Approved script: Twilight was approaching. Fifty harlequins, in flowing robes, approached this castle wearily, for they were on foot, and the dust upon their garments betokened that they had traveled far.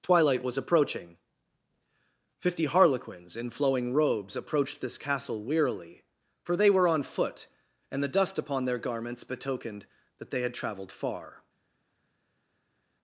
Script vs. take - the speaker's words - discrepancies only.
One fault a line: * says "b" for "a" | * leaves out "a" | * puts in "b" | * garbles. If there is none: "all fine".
all fine